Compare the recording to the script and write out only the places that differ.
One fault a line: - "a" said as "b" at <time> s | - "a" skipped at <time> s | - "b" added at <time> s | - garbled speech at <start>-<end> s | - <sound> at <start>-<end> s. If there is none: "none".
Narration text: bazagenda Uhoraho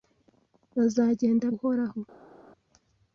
none